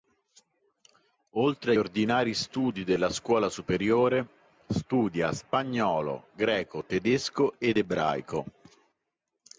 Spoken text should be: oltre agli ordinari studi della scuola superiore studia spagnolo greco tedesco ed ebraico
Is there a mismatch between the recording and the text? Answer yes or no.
yes